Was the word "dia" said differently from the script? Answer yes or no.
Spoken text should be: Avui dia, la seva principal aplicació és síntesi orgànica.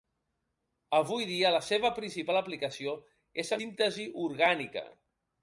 no